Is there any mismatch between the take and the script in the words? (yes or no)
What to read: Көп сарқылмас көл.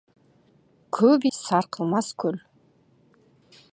no